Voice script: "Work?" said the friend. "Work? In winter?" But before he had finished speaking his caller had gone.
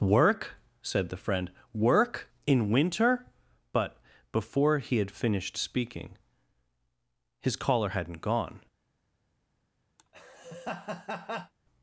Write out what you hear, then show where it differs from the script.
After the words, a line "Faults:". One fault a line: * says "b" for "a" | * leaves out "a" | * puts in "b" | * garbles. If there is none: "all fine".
"Work?" said the friend. "Work? In winter?" But before he had finished speaking his caller hadn't gone.
Faults:
* says "hadn't" for "had"